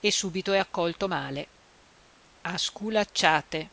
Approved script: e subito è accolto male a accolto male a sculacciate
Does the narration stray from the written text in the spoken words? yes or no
yes